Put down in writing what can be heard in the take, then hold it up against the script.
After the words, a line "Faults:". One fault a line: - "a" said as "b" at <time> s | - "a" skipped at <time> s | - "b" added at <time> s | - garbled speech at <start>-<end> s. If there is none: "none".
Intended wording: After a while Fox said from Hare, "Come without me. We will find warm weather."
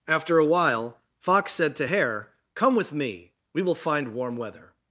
After a while Fox said to Hare, "Come with me. We will find warm weather."
Faults:
- "from" said as "to" at 1.8 s
- "without" said as "with" at 2.7 s